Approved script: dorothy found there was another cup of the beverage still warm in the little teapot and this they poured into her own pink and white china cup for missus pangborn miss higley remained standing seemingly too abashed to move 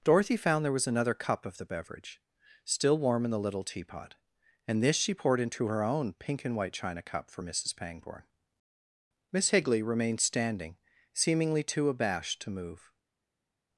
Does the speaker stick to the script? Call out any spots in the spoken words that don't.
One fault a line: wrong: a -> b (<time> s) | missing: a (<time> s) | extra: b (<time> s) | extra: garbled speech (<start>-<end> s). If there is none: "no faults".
wrong: they -> she (5.0 s)